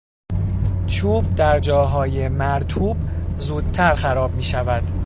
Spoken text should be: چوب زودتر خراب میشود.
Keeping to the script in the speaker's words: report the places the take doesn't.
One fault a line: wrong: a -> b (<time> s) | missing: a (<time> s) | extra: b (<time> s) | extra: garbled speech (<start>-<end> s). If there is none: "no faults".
extra: در جاهای مرطوب (1.4 s)